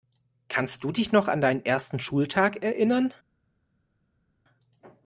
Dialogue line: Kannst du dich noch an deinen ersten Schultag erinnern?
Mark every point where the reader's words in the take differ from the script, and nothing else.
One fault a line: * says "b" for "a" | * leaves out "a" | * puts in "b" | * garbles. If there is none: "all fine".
all fine